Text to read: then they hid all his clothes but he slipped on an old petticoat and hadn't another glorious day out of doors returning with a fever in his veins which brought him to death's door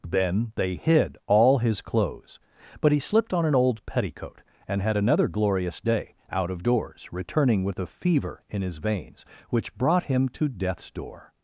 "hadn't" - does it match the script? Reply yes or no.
no